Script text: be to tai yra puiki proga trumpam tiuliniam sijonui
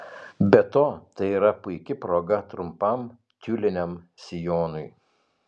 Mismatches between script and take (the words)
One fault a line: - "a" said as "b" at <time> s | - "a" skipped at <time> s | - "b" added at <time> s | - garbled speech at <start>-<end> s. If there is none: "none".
none